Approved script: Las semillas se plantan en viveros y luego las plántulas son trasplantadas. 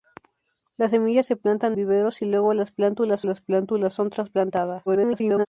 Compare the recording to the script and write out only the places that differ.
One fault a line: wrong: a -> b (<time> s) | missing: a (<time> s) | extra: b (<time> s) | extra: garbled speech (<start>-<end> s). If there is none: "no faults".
missing: en (1.8 s)
extra: las plántulas (3.2 s)
extra: garbled speech (4.9-5.5 s)